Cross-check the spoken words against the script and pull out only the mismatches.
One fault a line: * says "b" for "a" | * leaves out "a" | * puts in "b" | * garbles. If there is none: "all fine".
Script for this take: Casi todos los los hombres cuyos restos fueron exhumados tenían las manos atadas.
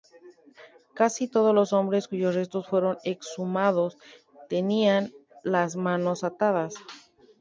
* leaves out "los"